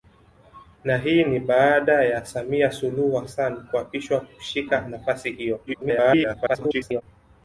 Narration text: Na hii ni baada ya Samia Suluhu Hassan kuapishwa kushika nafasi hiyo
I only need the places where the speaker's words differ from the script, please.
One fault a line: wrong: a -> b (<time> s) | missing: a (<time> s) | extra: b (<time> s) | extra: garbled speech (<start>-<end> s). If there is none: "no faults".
extra: garbled speech (5.7-7.0 s)